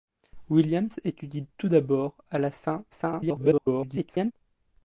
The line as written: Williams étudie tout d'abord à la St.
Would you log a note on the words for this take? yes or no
yes